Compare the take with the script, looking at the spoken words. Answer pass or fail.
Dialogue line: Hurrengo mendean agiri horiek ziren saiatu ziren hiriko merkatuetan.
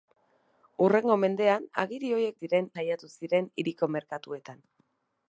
pass